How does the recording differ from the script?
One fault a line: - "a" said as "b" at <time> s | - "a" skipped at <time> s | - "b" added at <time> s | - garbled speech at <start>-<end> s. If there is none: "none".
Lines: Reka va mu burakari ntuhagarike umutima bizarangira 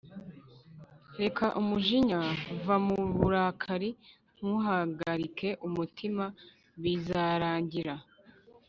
- "umujinya" added at 1.6 s